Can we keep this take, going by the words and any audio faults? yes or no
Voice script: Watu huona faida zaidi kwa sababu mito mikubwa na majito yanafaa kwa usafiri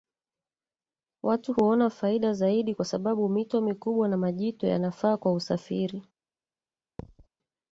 no